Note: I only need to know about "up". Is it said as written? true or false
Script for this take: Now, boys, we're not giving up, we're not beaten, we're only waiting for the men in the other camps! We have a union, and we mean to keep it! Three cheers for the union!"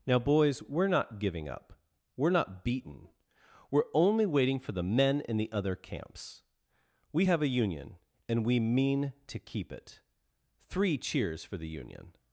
true